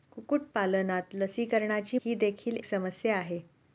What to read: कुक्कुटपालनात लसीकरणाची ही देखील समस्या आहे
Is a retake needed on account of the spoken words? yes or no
no